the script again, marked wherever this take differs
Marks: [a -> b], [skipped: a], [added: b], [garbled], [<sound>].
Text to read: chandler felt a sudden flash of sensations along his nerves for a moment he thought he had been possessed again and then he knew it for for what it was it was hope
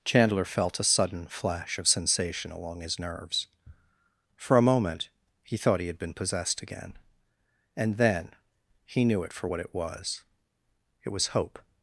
chandler felt a sudden flash of [sensations -> sensation] along his nerves for a moment he thought he had been possessed again and then he knew it for [skipped: for] what it was it was hope